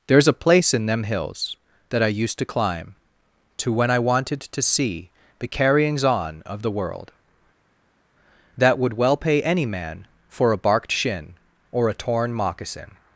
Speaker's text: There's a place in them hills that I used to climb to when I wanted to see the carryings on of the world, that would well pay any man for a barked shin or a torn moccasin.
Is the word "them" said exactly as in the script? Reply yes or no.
yes